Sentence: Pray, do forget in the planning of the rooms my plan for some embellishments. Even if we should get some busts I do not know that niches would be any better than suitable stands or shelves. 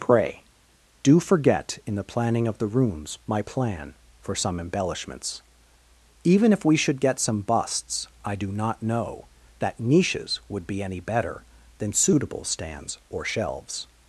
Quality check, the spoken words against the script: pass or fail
pass